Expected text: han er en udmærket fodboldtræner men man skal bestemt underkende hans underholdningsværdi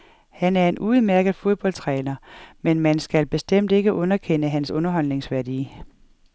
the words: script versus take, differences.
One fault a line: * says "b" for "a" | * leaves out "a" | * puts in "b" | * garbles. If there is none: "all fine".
* puts in "ikke"